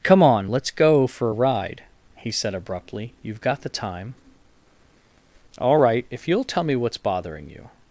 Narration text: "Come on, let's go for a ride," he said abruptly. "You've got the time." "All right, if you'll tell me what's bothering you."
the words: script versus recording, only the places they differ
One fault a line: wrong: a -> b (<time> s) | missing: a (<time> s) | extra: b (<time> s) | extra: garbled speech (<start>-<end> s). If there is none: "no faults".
no faults